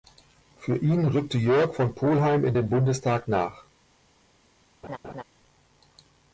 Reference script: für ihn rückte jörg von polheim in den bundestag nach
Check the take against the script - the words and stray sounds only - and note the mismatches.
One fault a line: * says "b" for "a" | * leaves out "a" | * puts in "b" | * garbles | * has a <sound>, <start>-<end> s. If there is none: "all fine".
* has a laugh, 4.8-5.2 s